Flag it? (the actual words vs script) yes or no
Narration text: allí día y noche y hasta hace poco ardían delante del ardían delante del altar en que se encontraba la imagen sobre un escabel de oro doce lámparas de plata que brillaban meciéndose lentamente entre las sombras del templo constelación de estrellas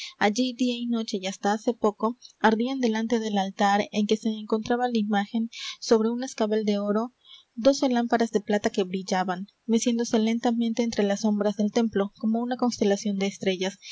yes